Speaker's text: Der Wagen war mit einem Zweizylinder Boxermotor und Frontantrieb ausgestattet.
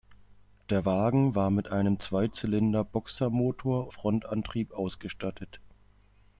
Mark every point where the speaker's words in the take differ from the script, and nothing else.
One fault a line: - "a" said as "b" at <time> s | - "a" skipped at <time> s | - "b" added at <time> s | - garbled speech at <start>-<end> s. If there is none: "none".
- "und" skipped at 3.9 s